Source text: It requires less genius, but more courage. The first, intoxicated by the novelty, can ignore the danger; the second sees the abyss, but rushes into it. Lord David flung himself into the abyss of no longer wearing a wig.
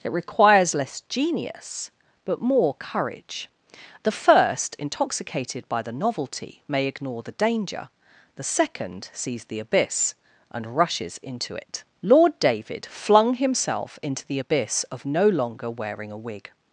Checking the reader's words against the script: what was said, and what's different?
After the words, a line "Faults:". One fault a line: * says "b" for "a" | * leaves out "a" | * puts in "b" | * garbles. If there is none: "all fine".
It requires less genius, but more courage. The first, intoxicated by the novelty, may ignore the danger; the second sees the abyss, and rushes into it. Lord David flung himself into the abyss of no longer wearing a wig.
Faults:
* says "may" for "can"
* says "and" for "but"